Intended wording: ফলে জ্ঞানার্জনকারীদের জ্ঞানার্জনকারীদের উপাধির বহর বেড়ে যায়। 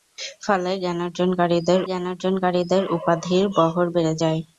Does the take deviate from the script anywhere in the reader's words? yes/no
no